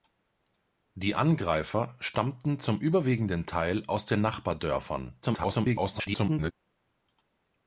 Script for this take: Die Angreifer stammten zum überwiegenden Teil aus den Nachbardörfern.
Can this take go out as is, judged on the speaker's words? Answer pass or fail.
fail